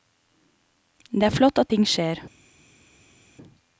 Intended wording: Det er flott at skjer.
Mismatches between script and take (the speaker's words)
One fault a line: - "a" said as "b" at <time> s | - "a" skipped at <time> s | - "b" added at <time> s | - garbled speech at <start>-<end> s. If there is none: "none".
- "ting" added at 1.7 s